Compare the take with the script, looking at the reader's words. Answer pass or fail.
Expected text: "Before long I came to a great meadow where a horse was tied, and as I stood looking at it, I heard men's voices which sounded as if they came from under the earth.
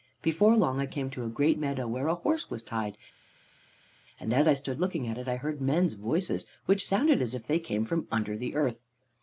pass